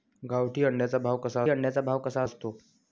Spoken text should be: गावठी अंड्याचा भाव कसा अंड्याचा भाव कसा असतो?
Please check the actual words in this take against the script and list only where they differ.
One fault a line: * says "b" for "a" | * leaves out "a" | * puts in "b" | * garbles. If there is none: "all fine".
all fine